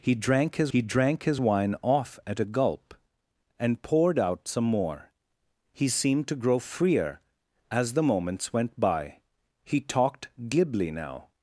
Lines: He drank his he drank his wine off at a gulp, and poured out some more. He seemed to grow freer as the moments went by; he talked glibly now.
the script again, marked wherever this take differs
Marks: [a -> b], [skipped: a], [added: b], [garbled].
He drank his he drank his wine off at a gulp, and poured out some more. He seemed to grow freer as the moments went by; he talked glibly now.